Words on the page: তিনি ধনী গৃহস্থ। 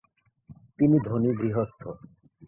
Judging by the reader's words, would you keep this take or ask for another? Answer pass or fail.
pass